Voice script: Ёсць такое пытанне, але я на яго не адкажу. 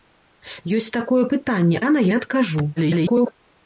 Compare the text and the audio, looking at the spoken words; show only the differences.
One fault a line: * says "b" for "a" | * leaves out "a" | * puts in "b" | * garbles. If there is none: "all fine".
* leaves out "але"
* leaves out "яго"
* garbles